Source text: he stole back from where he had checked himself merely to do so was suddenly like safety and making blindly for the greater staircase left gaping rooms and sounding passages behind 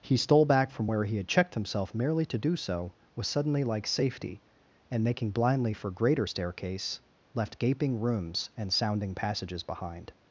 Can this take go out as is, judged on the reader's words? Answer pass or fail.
fail